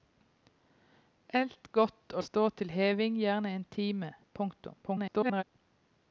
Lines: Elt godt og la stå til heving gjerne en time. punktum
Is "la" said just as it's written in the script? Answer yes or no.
no